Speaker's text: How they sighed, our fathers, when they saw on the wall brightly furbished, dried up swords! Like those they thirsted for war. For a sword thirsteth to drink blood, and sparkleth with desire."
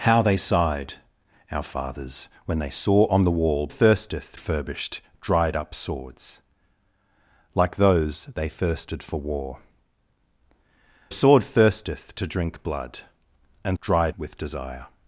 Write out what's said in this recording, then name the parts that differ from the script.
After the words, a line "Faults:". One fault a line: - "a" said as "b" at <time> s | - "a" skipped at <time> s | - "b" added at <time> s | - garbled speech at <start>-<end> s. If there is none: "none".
How they sighed, our fathers, when they saw on the wall thirsteth furbished, dried up swords! Like those they thirsted for war. A sword thirsteth to drink blood, and dried with desire."
Faults:
- "brightly" said as "thirsteth" at 3.7 s
- "For" skipped at 9.6 s
- "sparkleth" said as "dried" at 13.8 s